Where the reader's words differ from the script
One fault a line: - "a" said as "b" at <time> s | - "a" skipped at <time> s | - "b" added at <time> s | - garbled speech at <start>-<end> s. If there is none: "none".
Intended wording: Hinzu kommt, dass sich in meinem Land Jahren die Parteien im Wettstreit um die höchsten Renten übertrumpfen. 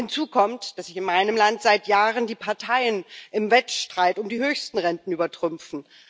- "seit" added at 1.6 s